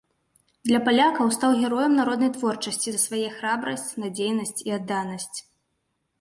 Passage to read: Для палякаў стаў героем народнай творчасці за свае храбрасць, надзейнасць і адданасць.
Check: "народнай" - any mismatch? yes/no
no